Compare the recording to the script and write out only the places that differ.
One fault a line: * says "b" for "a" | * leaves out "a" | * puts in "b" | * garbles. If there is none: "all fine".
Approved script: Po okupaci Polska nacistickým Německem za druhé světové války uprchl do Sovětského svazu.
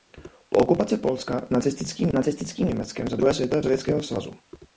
* puts in "nacistickým"
* leaves out "války uprchl do"